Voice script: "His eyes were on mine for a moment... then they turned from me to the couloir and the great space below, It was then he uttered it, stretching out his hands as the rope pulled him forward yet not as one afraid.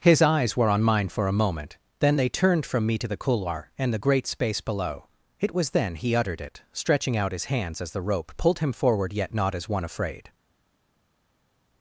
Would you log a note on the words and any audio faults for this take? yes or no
no